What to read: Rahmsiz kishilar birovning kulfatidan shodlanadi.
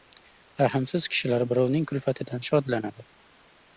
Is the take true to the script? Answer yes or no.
yes